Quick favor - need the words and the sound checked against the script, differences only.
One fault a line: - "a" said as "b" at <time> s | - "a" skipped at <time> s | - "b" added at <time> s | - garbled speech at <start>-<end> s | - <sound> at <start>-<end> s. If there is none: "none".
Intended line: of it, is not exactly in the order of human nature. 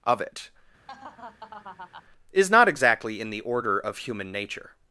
- laugh at 0.9-2.0 s